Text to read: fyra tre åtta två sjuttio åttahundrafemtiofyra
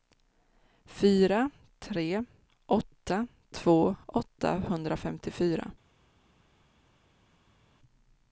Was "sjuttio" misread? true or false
true